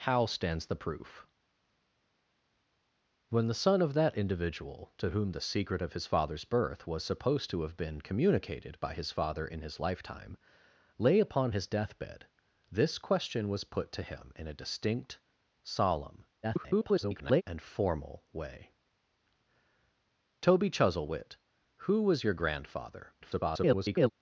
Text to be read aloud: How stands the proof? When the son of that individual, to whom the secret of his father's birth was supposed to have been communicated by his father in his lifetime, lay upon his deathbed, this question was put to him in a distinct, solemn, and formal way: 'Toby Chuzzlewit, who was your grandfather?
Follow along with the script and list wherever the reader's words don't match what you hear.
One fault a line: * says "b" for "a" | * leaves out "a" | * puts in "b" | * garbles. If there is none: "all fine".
* garbles
* garbles